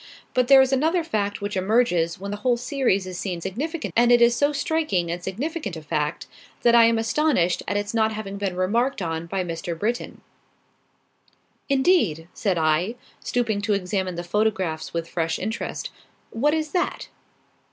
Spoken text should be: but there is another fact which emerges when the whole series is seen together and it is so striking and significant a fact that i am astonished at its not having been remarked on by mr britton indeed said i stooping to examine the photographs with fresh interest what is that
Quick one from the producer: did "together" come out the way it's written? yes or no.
no